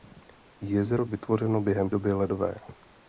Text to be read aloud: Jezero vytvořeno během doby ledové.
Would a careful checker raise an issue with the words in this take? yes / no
no